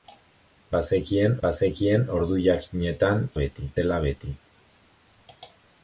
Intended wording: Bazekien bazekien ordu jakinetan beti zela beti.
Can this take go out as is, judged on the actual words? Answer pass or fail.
pass